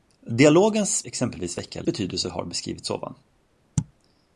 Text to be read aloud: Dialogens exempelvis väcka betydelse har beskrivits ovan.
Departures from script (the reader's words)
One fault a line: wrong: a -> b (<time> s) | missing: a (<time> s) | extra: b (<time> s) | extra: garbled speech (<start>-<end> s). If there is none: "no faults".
no faults